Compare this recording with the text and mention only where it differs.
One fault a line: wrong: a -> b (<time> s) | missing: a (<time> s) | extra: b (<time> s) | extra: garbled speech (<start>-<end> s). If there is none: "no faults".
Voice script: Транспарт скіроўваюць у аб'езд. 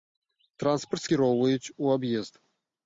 no faults